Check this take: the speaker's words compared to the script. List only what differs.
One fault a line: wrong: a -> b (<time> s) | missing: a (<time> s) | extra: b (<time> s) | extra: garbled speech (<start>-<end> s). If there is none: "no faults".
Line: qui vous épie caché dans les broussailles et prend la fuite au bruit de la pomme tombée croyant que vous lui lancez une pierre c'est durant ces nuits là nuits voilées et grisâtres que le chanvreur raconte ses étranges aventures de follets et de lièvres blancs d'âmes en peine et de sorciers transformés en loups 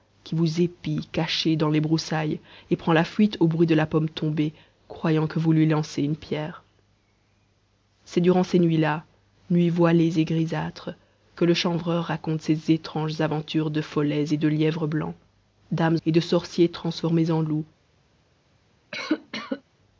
missing: en peine (16.0 s)